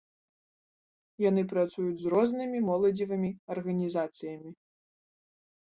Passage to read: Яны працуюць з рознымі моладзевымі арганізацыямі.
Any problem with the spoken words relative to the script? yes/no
no